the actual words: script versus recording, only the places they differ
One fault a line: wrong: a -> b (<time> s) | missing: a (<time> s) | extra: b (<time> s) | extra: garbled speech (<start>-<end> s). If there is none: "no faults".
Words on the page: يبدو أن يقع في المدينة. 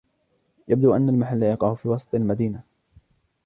extra: المحل (1.1 s)
extra: وسط (1.9 s)